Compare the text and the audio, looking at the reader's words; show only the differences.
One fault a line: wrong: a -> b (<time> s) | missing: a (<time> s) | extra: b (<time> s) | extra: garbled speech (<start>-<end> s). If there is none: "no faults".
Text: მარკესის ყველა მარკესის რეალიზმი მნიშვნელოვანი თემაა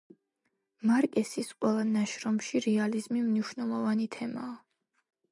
wrong: მარკესის -> ნაშრომში (1.9 s)